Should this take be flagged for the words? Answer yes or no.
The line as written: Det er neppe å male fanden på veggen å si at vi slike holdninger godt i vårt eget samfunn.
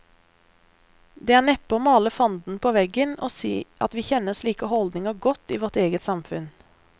yes